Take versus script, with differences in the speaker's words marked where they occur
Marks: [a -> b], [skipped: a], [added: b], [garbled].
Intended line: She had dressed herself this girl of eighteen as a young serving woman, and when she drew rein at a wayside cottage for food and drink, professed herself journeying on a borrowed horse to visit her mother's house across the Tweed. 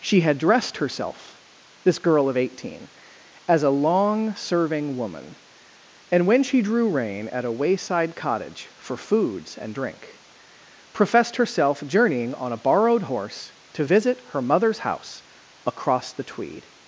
She had dressed herself this girl of eighteen as a [young -> long] serving woman, and when she drew rein at a wayside cottage for [food -> foods] and drink, professed herself journeying on a borrowed horse to visit her mother's house across the Tweed.